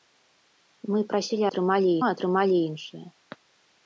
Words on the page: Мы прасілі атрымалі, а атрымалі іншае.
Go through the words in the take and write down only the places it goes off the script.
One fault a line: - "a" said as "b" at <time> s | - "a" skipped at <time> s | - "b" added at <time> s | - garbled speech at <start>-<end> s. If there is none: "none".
none